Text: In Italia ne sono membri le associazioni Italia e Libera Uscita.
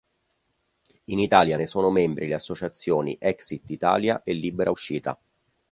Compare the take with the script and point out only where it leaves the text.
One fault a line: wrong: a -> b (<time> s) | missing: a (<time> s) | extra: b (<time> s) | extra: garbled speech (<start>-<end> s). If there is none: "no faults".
extra: Exit (3.2 s)